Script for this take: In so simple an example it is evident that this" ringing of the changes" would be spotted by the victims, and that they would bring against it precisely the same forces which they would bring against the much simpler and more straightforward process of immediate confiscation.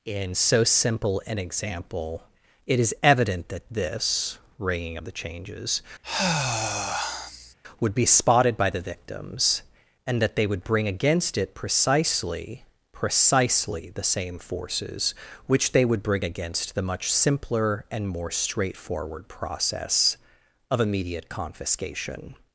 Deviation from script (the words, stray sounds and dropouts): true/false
true